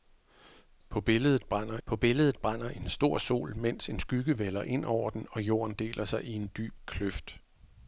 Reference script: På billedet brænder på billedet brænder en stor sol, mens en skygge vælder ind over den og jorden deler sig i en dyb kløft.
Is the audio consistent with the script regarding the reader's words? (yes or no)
yes